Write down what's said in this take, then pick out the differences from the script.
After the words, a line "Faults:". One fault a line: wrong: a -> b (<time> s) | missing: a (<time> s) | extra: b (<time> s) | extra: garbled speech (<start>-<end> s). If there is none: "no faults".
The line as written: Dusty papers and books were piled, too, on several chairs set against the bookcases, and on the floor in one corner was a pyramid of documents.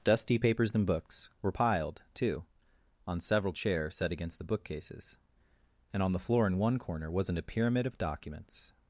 Dusty papers and books were piled, too, on several chairs set against the bookcases, and on the floor in one corner wasn't a pyramid of documents.
Faults:
wrong: was -> wasn't (7.1 s)